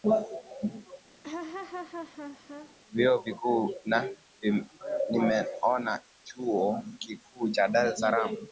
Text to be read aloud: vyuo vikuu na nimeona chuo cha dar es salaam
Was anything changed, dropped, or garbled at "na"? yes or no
no